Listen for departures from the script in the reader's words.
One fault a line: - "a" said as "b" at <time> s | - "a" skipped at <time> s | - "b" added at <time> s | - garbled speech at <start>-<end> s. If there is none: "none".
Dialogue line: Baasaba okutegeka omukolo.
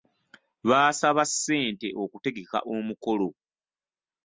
- "ssente" added at 1.3 s